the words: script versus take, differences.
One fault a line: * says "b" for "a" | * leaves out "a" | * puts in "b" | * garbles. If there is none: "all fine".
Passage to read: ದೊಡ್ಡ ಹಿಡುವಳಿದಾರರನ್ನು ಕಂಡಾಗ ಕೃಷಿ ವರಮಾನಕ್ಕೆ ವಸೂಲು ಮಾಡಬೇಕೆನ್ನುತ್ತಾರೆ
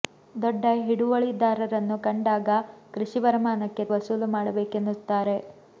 all fine